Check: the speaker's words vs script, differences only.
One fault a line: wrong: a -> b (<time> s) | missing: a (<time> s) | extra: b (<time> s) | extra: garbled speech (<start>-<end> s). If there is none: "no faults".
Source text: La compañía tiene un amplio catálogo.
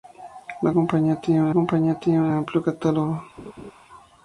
extra: compañía tiene un (1.5 s)